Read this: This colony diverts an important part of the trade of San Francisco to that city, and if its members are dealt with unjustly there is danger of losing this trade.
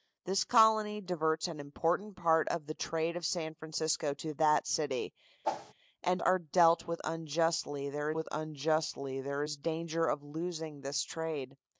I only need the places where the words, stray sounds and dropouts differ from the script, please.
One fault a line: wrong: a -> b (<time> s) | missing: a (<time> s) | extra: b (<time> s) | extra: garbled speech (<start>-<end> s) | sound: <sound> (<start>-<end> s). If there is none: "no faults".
sound: whoosh (5.4-5.7 s)
wrong: if its members are dealt -> are dealt with unjustly there (6.2 s)